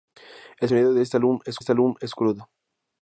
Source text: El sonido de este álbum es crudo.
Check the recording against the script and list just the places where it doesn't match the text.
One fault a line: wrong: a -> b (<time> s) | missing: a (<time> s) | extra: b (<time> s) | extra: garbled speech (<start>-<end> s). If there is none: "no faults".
extra: este álbum es (1.6 s)